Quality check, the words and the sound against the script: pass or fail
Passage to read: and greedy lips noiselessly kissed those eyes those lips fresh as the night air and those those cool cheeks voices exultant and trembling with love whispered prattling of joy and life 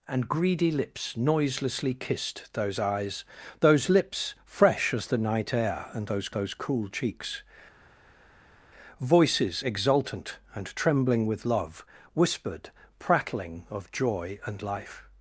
pass